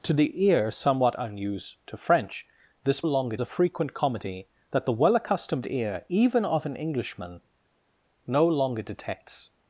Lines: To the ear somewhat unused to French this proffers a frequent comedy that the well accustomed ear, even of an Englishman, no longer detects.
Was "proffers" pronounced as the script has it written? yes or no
no